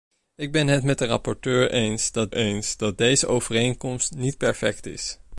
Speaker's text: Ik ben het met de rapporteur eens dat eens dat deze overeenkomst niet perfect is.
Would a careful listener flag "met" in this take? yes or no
no